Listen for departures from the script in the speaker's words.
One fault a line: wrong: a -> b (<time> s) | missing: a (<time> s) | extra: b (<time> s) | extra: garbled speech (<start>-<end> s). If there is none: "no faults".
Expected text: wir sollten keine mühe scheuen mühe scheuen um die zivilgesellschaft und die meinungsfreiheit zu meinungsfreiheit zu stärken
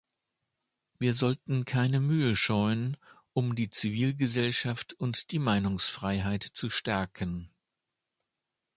missing: mühe scheuen (3.0 s)
missing: meinungsfreiheit zu (6.7 s)